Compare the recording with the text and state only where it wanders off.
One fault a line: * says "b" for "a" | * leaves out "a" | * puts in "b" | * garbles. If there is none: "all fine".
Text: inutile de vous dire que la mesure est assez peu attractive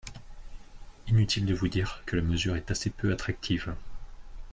all fine